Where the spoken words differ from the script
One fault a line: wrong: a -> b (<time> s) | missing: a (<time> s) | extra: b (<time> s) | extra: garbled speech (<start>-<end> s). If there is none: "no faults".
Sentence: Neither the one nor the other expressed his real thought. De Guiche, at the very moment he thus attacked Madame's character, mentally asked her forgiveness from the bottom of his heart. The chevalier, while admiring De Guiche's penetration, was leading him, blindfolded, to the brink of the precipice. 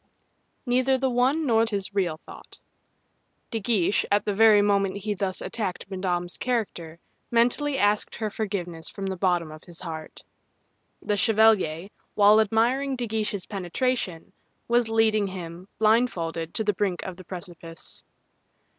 missing: the other expressed (1.6 s)